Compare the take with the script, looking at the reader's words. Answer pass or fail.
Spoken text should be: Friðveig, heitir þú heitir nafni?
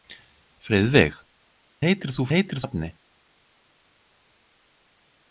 pass